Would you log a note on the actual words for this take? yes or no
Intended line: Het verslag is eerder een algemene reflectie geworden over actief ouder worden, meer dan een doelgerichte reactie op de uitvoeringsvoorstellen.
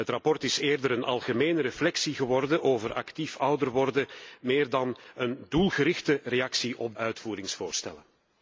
yes